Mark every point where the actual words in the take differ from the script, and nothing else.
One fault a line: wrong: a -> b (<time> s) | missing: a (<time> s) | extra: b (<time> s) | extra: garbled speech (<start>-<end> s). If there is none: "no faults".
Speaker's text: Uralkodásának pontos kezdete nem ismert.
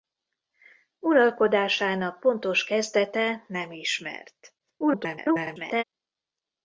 extra: garbled speech (4.6-5.8 s)